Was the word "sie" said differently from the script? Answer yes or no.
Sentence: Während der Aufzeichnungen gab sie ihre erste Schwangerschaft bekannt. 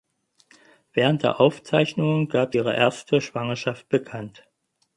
yes